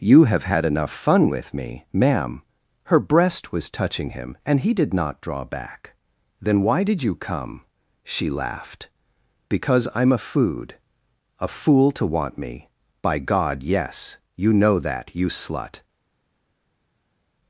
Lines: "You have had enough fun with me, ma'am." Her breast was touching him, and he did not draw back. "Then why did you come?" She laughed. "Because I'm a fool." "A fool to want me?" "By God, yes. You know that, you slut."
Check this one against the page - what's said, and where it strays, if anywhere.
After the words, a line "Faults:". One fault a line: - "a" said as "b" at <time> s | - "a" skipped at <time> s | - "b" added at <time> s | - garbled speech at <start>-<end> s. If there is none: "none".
"You have had enough fun with me, ma'am." Her breast was touching him, and he did not draw back. "Then why did you come?" She laughed. "Because I'm a food." "A fool to want me?" "By God, yes. You know that, you slut."
Faults:
- "fool" said as "food" at 10.2 s